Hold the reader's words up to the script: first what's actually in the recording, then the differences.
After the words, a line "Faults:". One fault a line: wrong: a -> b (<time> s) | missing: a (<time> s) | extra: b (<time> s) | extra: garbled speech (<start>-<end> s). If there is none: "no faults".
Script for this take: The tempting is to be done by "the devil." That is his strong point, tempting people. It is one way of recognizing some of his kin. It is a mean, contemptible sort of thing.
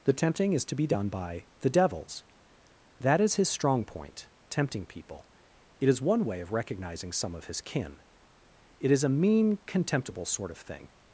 The tempting is to be done by "the devils." That is his strong point, tempting people. It is one way of recognizing some of his kin. It is a mean, contemptible sort of thing.
Faults:
wrong: devil -> devils (1.7 s)